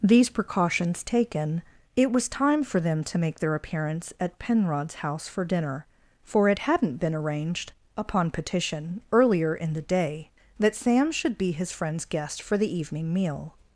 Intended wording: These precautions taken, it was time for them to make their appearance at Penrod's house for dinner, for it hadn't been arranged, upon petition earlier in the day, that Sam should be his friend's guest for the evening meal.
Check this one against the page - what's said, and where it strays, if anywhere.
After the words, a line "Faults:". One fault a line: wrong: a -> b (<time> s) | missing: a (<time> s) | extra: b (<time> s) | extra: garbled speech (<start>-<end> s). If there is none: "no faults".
These precautions taken, it was time for them to make their appearance at Penrod's house for dinner, for it hadn't been arranged, upon petition earlier in the day, that Sam should be his friend's guest for the evening meal.
Faults:
no faults